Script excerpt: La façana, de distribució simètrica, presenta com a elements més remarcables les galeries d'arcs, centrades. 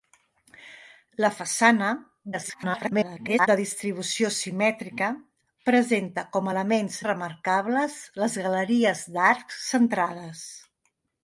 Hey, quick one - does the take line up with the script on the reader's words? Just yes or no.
no